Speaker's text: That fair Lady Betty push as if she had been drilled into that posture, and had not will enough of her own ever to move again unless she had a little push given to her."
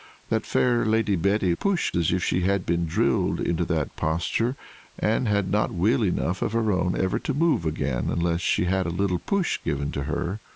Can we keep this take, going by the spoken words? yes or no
yes